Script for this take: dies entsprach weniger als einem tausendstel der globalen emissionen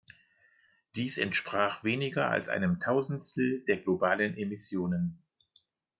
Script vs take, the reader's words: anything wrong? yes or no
no